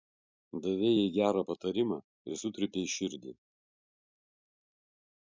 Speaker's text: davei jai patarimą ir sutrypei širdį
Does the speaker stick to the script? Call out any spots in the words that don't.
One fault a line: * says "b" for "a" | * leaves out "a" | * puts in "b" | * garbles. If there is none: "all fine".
* puts in "gerą"